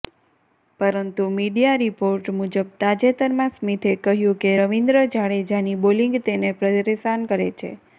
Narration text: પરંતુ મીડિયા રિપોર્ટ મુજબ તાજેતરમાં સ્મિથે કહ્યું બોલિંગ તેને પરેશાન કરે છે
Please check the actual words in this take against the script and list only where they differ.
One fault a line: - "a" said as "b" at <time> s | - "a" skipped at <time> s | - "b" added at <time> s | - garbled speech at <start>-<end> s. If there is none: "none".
- "કે રવિન્દ્ર જાડેજાની" added at 4.4 s